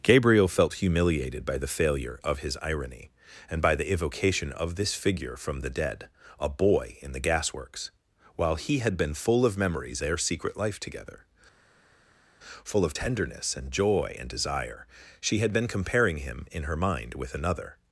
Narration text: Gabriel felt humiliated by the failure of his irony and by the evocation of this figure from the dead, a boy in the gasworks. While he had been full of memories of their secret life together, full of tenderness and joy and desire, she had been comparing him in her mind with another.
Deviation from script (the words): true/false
true